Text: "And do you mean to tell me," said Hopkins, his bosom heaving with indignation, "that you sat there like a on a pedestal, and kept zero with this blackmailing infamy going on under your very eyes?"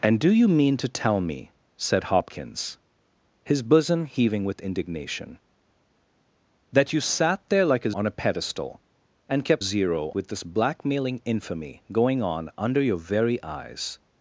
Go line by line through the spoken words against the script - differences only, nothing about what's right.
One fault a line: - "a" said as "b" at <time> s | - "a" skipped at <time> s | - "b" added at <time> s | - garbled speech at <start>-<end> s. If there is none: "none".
none